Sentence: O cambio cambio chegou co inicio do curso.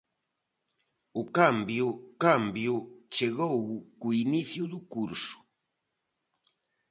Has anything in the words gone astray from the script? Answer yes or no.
no